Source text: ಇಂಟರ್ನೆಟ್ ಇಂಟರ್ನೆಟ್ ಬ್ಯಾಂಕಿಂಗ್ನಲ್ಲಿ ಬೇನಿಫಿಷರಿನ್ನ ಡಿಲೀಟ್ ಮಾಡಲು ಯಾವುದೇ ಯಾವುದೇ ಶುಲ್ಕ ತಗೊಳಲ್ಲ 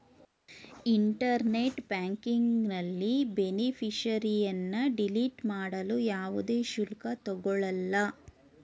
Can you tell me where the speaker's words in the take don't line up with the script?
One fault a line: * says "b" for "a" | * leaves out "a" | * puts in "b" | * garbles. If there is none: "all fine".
* leaves out "ಇಂಟರ್ನೆಟ್"
* leaves out "ಯಾವುದೇ"